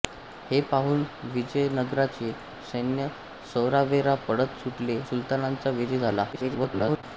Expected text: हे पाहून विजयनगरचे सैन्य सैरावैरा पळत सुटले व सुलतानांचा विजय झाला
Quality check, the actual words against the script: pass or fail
fail